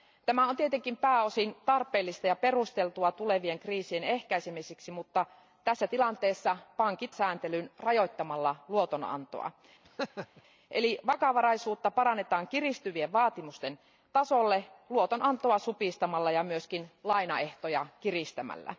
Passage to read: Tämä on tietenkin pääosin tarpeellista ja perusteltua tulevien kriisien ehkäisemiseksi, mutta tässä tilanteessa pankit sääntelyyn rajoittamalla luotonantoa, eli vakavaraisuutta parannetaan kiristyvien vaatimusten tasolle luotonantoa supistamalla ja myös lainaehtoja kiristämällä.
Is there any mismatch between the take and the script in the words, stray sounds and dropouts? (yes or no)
yes